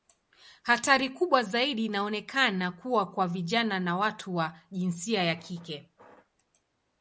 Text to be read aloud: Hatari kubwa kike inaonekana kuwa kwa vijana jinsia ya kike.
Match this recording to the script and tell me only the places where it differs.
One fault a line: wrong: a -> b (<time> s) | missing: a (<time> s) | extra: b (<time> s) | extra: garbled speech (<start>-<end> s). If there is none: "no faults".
wrong: kike -> zaidi (1.4 s)
extra: na watu wa (3.8 s)